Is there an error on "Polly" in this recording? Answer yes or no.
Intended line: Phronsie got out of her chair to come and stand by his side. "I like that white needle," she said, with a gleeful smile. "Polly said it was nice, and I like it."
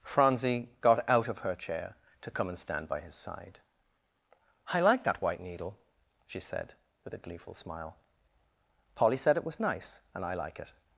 no